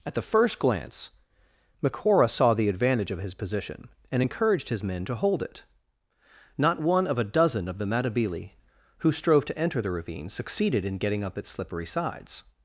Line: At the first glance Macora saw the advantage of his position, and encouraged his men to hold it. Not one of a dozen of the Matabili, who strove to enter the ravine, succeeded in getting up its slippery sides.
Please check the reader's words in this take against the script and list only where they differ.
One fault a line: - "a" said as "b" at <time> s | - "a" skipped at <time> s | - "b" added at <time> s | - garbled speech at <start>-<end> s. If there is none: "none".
none